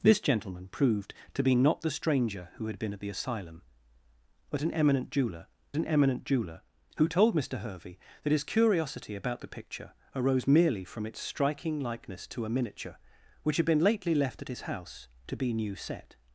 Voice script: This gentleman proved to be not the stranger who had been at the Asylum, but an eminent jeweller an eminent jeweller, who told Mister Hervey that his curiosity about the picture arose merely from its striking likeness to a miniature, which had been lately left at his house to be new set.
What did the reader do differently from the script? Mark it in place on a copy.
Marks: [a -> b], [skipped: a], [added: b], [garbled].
This gentleman proved to be not the stranger who had been at the Asylum, but an eminent jeweller an eminent jeweller, who told Mister Hervey that his curiosity about the picture arose merely from its striking likeness to a miniature, which had been lately left at his house to be new set.